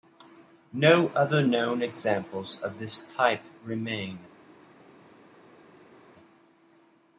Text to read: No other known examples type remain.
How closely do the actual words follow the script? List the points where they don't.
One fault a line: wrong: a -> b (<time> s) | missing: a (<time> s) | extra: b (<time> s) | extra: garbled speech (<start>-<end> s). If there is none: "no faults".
extra: of this (2.6 s)